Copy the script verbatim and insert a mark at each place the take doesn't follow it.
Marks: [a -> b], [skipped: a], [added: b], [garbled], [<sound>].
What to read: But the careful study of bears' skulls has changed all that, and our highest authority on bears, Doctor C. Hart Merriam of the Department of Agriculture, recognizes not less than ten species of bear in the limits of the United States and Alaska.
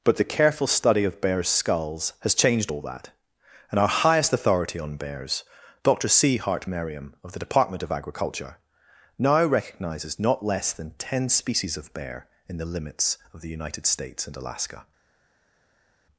But the careful study of bears' skulls has changed all that, and our highest authority on bears, Doctor C. Hart Merriam of the Department of Agriculture, [added: now] recognizes not less than ten species of bear in the limits of the United States and Alaska.